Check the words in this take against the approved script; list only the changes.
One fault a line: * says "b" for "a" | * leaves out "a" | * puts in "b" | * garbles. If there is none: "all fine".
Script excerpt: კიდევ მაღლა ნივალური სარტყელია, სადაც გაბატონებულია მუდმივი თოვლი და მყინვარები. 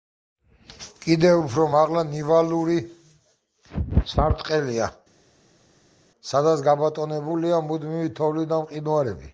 * puts in "უფრო"